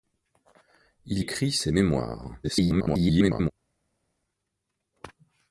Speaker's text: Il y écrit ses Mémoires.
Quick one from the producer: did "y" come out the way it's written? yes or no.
no